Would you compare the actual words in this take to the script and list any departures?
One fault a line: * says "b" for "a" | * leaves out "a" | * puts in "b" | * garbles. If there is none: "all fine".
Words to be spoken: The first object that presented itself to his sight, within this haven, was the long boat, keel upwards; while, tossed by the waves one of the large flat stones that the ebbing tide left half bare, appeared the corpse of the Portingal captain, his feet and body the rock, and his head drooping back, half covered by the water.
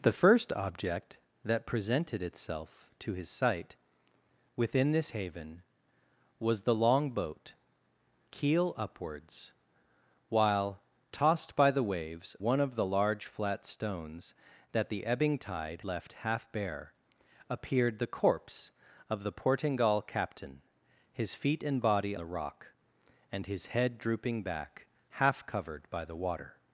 all fine